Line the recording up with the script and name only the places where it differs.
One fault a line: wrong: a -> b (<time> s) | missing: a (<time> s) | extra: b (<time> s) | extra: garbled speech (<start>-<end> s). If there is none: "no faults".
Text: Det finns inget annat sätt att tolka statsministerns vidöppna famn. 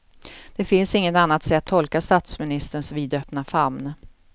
missing: att (1.7 s)